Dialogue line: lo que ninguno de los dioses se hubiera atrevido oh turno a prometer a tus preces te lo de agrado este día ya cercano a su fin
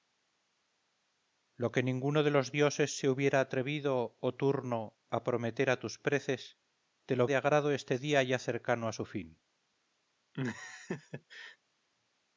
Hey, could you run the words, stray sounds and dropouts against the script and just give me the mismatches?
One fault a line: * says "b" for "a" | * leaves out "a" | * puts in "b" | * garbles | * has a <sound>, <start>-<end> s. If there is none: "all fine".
* has a laugh, 10.3-11.6 s